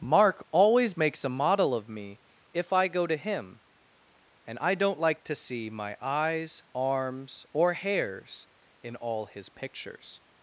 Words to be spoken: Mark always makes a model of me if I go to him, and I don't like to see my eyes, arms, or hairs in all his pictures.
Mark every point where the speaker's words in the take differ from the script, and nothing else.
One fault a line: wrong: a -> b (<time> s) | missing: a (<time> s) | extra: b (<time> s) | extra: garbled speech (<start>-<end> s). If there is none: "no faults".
no faults